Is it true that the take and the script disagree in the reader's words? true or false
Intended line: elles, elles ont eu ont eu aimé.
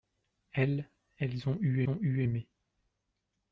false